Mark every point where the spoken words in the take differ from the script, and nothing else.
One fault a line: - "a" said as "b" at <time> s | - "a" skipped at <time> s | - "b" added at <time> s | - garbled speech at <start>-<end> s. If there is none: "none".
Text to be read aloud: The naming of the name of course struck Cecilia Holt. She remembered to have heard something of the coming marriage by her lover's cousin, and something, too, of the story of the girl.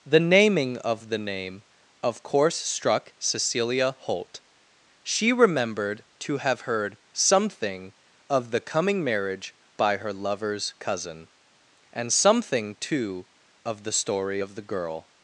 none